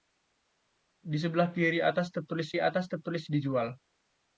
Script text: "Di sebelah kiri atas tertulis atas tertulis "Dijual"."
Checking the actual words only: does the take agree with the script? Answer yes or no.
yes